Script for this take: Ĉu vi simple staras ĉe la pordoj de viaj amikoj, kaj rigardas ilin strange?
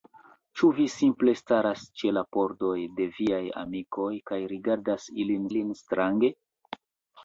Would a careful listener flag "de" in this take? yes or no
no